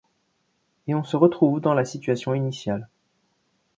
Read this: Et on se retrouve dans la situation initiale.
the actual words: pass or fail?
pass